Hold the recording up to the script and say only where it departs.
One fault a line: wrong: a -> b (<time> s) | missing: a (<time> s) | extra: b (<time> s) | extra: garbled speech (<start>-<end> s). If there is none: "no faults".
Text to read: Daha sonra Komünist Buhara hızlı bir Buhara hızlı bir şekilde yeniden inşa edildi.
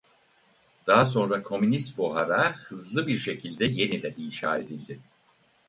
missing: Buhara hızlı bir (3.2 s)